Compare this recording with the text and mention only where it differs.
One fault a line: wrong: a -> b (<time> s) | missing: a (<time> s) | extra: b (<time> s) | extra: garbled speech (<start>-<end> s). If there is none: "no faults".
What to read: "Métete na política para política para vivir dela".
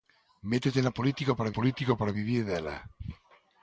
no faults